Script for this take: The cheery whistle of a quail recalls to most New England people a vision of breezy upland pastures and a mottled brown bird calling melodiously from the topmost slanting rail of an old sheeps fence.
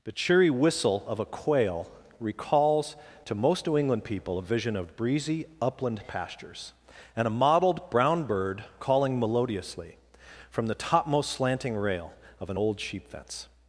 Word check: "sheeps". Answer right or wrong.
wrong